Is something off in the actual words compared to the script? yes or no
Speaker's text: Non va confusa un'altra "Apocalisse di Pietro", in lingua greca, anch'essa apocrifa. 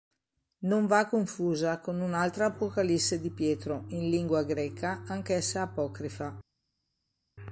yes